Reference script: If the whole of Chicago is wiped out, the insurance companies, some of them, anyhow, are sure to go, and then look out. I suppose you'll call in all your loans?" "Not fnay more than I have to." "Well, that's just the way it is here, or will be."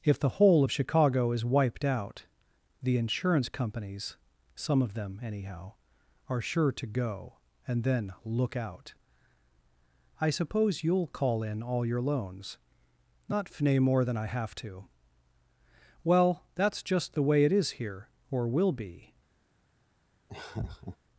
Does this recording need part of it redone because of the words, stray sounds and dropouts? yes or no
yes